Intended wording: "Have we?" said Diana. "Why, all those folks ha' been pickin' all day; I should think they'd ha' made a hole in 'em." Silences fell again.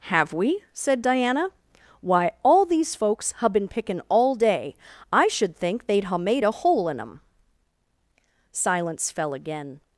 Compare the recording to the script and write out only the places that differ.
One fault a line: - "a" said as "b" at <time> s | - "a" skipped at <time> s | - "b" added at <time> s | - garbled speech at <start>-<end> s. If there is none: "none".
- "those" said as "these" at 2.6 s
- "Silences" said as "Silence" at 8.5 s